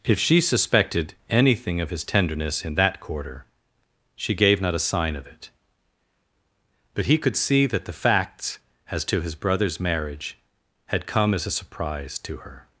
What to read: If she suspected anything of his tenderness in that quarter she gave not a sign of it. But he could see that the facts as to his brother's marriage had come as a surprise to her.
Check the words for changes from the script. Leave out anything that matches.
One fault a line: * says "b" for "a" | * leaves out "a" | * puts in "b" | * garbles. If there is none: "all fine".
all fine